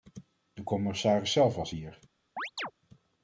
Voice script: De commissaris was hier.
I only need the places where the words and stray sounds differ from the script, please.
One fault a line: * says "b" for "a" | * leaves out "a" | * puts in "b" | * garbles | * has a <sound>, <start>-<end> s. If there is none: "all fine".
* puts in "zelf"
* has a chirp, 2.4-2.7 s